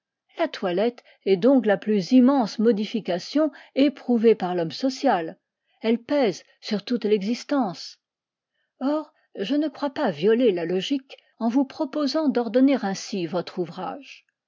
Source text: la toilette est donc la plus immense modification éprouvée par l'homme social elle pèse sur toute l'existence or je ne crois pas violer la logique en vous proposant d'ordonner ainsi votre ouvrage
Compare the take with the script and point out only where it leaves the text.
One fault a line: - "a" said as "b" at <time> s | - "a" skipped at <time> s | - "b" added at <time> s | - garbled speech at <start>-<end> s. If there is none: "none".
none